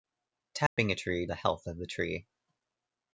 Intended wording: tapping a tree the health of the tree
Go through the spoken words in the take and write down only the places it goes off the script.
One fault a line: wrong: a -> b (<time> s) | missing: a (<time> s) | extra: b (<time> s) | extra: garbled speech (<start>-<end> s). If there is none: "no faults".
no faults